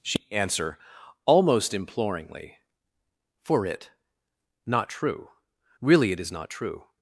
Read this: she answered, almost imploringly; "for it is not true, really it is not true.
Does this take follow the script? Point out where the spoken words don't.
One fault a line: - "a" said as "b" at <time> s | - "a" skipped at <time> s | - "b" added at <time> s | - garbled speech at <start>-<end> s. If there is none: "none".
- "answered" said as "answer" at 0.3 s
- "is" skipped at 3.9 s